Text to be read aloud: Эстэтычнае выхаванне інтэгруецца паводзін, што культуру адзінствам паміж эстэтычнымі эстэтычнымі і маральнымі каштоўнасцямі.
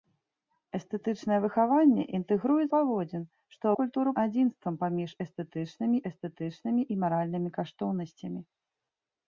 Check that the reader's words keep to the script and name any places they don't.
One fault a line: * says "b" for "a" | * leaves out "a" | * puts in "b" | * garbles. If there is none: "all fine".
all fine